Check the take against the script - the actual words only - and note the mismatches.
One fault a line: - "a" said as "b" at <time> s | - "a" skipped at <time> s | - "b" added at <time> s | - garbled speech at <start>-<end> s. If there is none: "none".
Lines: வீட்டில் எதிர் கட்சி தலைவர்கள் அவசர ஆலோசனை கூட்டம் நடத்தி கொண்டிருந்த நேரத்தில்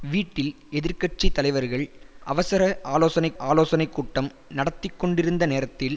- "ஆலோசனை" added at 3.4 s